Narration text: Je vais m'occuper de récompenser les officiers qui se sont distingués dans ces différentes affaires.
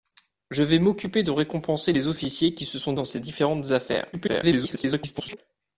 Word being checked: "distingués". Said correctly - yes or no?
no